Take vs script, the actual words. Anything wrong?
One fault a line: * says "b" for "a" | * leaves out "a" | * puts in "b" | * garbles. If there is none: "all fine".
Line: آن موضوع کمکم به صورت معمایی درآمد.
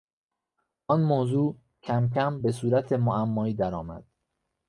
all fine